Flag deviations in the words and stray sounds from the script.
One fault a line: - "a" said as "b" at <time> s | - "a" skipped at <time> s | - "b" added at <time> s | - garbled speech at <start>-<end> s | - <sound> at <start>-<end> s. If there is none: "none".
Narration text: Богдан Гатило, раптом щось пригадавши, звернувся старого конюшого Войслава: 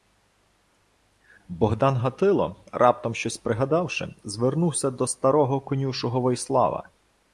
- "до" added at 4.9 s